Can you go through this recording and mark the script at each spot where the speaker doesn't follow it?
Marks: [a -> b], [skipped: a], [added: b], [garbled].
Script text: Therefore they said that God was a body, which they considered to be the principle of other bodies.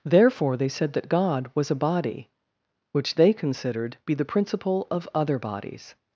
Therefore they said that God was a body, which they considered [skipped: to] be the principle of other bodies.